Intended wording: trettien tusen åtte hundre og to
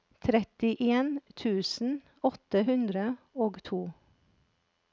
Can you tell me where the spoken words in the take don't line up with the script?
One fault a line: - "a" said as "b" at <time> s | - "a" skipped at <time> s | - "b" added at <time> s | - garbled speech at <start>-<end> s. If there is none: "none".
none